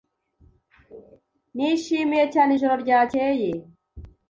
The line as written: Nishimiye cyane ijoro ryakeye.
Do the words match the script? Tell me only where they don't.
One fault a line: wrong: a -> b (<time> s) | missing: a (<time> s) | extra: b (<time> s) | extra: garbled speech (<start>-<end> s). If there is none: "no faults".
no faults